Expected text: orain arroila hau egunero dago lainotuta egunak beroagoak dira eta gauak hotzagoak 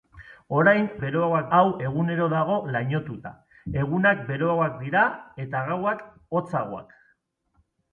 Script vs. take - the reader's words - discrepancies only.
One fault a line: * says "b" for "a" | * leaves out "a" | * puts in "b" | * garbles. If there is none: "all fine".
* says "beroagoak" for "arroila"